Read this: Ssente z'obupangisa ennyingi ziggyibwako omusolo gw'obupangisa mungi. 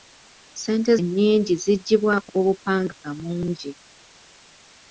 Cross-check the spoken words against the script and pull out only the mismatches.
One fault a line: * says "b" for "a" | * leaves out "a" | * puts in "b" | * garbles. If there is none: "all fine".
* leaves out "z'obupangisa"
* leaves out "omusolo"